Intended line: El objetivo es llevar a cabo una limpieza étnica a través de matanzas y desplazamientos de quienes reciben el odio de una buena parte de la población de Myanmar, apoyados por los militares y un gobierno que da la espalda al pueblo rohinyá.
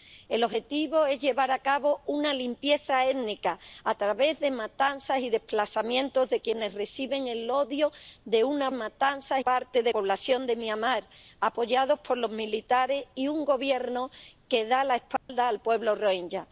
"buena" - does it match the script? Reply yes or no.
no